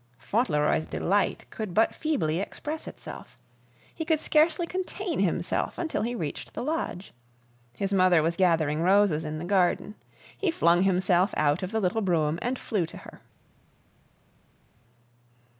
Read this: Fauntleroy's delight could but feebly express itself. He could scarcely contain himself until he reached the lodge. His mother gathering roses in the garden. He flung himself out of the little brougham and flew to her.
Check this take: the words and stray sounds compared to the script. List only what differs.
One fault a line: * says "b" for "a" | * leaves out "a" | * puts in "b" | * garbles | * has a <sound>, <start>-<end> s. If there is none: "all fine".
* puts in "was"